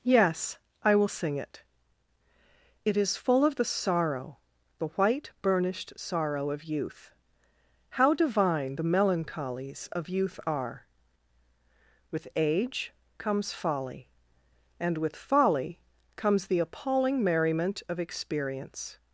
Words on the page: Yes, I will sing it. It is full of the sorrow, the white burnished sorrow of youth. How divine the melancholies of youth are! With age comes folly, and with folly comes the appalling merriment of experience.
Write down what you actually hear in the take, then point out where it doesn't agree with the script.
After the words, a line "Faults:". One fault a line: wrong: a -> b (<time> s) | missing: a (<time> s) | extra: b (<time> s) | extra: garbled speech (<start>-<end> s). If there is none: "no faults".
Yes, I will sing it. It is full of the sorrow, the white burnished sorrow of youth. How divine the melancholies of youth are! With age comes folly, and with folly comes the appalling merriment of experience.
Faults:
no faults